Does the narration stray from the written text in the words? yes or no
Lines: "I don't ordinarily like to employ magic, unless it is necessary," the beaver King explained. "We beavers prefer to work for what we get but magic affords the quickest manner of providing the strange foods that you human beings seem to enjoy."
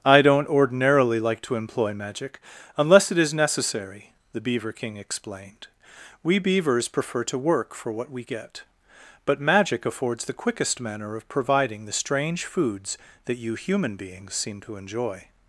no